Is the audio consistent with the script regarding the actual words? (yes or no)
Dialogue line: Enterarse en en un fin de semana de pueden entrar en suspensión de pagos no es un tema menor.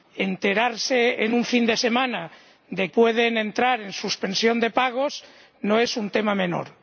yes